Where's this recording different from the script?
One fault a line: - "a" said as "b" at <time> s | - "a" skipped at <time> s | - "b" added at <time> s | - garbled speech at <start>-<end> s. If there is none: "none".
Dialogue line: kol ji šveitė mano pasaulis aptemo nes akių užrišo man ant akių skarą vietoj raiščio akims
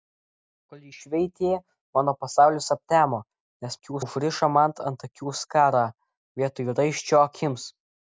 none